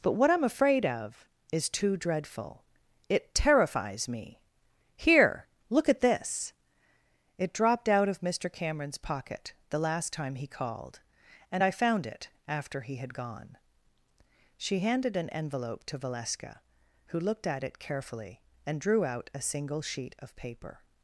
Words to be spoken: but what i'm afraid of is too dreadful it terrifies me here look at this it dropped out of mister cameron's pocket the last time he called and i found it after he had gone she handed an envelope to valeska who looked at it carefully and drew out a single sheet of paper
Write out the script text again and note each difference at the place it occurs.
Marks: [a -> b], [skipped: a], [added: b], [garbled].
but what i'm afraid of is too dreadful it terrifies me here look at this it dropped out of mister cameron's pocket the last time he called and i found it after he had gone she handed an envelope to valeska who looked at it carefully and drew out a single sheet of paper